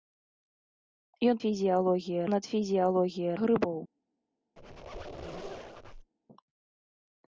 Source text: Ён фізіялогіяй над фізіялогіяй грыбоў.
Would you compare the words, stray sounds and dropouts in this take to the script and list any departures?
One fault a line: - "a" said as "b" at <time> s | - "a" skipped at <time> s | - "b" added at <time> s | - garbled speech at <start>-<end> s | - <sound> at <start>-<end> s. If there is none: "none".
- squeak at 4.6-6.1 s